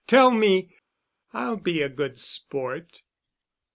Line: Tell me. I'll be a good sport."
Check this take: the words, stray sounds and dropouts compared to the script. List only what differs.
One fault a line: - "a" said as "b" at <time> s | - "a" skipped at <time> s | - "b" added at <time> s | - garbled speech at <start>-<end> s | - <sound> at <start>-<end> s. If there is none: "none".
none